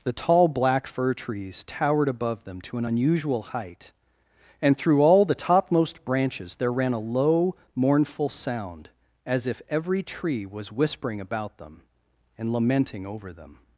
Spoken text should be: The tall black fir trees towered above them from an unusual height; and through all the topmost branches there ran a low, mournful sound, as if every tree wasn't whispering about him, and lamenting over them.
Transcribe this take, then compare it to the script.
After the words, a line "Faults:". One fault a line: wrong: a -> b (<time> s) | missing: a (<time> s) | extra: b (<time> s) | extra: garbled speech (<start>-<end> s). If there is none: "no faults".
The tall black fir trees towered above them to an unusual height; and through all the topmost branches there ran a low, mournful sound, as if every tree was whispering about them, and lamenting over them.
Faults:
wrong: from -> to (2.6 s)
wrong: wasn't -> was (10.4 s)
wrong: him -> them (11.6 s)